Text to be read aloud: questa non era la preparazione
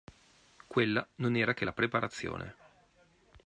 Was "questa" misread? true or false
true